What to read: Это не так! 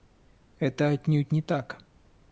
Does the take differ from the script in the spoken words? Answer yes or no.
yes